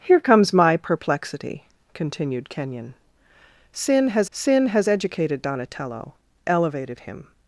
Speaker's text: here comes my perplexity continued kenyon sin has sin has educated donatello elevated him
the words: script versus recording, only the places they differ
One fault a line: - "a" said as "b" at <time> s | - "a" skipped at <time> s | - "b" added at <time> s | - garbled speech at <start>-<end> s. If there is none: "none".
none